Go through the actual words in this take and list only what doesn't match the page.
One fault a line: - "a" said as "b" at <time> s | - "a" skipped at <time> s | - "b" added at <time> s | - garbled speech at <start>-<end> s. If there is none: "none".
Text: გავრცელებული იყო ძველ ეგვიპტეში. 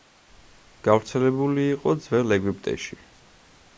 none